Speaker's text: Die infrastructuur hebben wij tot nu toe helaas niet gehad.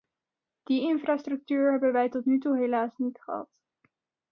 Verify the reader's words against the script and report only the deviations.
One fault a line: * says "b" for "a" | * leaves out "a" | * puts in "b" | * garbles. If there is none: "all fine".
all fine